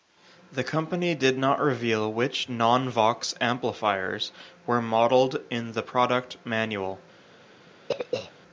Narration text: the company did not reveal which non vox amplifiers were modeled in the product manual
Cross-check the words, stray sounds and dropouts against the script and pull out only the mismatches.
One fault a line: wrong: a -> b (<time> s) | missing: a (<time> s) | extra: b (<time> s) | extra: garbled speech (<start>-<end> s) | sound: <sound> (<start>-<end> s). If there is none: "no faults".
sound: throat clearing (7.9-8.3 s)